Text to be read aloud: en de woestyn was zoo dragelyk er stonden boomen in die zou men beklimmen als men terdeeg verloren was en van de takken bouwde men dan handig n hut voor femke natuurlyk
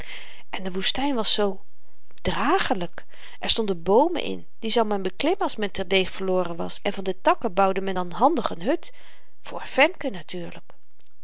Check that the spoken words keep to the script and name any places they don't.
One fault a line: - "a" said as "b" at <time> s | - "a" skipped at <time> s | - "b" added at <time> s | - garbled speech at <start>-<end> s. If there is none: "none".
none